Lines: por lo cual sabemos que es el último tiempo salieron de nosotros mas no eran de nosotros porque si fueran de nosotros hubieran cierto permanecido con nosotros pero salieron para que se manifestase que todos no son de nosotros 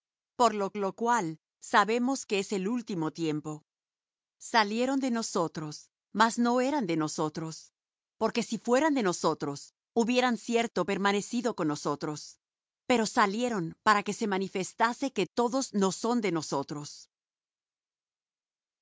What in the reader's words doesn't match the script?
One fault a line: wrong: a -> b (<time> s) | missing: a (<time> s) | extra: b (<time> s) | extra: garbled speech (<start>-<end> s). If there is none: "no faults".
extra: lo (0.8 s)